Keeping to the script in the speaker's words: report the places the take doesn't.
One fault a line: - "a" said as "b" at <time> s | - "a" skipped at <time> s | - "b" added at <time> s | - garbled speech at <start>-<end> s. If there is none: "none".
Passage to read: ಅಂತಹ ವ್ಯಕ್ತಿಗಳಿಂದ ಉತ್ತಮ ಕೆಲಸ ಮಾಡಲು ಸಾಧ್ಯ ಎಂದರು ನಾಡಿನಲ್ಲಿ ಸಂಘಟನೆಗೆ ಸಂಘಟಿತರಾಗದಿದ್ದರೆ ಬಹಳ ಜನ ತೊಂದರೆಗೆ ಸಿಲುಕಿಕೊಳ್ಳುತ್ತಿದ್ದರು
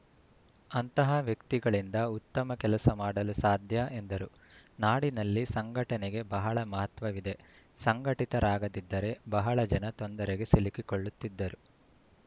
- "ಬಹಳ ಮಹತ್ವವಿದೆ" added at 6.4 s